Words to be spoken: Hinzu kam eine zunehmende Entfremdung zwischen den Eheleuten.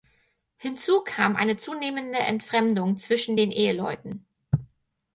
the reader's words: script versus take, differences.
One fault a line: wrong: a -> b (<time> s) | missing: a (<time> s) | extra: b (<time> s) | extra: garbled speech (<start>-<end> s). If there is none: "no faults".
no faults